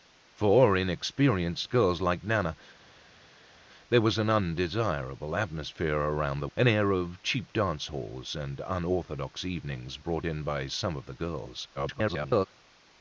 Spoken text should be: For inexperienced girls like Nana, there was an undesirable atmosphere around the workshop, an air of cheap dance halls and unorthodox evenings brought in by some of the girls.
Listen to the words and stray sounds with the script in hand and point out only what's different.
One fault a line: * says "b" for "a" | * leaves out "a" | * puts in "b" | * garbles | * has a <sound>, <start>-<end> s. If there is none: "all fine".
* leaves out "workshop"
* garbles